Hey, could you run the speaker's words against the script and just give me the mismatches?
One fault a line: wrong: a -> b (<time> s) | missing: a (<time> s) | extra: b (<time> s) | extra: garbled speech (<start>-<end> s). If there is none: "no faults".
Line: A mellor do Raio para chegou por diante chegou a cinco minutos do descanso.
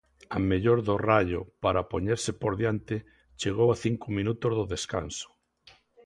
wrong: chegou -> poñerse (1.9 s)